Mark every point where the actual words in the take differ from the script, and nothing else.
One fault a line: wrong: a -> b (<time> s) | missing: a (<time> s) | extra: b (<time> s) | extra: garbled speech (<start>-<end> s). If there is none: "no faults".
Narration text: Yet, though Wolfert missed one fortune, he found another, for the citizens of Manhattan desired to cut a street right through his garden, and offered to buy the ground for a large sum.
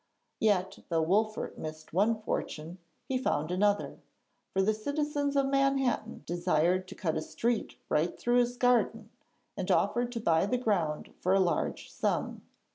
no faults